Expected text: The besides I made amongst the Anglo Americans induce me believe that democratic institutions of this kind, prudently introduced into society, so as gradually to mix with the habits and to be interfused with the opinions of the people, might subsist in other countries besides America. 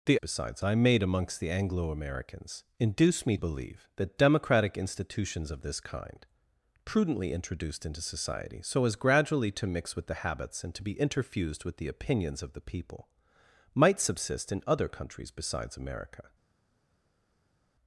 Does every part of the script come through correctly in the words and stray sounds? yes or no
yes